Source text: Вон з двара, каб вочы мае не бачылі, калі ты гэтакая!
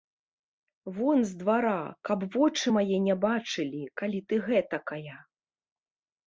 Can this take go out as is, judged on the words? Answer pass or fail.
pass